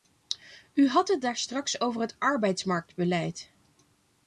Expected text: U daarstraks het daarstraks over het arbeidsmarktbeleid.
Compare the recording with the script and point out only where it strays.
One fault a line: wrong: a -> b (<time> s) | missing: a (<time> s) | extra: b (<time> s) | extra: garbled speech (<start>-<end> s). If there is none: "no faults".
wrong: daarstraks -> had (0.9 s)